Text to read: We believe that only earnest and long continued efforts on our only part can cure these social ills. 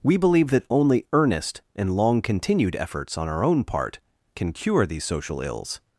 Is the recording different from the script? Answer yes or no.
yes